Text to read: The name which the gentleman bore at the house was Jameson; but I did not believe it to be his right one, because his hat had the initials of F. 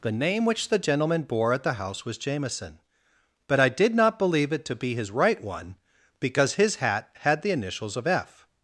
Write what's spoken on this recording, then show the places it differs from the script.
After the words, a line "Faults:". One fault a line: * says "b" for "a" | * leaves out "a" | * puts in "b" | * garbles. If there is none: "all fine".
The name which the gentleman bore at the house was Jameson; but I did not believe it to be his right one, because his hat had the initials of F.
Faults:
all fine